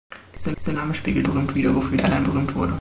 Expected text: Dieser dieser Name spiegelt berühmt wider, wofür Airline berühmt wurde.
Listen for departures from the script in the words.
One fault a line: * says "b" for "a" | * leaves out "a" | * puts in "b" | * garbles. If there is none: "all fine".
all fine